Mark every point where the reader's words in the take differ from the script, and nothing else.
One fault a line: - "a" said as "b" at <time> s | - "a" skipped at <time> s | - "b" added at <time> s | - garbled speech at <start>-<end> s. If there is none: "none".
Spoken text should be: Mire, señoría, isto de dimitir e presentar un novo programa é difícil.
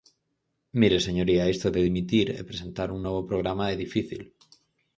none